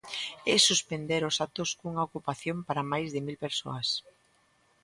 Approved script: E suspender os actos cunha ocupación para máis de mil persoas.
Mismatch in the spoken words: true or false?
false